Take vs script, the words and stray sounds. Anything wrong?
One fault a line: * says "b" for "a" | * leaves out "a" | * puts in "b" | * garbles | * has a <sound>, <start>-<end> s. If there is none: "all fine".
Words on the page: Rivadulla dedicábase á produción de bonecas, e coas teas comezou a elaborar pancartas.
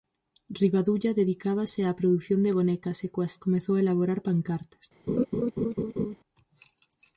* leaves out "teas"
* has a laugh, 5.1-6.2 s